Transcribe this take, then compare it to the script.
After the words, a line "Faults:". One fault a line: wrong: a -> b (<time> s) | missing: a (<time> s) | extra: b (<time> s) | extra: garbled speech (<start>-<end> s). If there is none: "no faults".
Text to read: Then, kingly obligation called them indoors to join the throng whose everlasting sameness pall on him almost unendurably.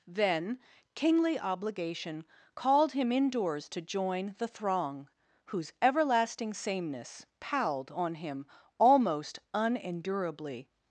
Then, kingly obligation called him indoors to join the throng whose everlasting sameness palled on him almost unendurably.
Faults:
wrong: them -> him (2.9 s)
wrong: pall -> palled (7.4 s)